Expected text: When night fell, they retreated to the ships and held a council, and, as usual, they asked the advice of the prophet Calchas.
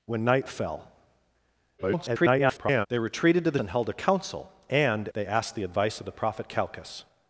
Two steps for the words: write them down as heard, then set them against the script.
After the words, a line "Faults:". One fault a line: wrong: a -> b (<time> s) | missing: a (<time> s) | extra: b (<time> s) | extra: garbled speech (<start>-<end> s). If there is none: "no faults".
When night fell, [garbled] they retreated to the and held a council, and, they asked the advice of the prophet Calchas.
Faults:
extra: garbled speech (1.8-2.9 s)
missing: ships (3.6 s)
missing: as usual (5.1 s)